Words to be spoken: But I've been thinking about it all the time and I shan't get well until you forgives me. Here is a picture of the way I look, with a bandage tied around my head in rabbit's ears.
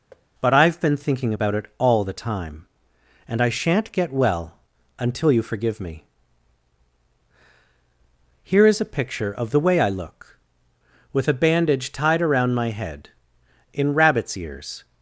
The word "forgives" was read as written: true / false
false